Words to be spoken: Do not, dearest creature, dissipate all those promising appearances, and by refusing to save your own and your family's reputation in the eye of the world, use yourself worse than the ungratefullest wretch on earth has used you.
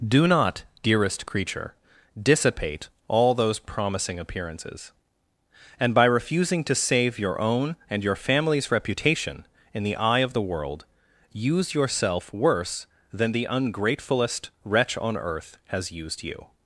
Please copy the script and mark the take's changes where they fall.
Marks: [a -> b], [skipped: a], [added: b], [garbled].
Do not, dearest creature, dissipate all those promising appearances, and by refusing to save your own and your family's reputation in the eye of the world, use yourself worse than the ungratefullest wretch on earth has used you.